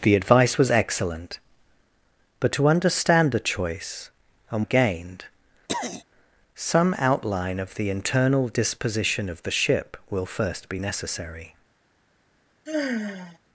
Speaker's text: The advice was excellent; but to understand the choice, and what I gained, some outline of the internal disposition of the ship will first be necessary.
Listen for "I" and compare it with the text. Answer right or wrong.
wrong